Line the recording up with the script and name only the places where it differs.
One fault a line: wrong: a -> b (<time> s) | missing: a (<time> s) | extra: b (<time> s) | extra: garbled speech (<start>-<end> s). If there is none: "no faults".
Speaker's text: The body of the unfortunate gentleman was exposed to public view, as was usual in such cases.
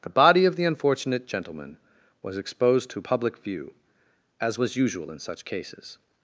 no faults